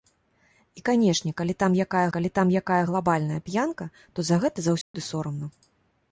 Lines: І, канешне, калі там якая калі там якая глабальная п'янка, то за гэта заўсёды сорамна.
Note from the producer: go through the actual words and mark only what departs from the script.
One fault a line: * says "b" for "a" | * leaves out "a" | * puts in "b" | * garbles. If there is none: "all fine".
all fine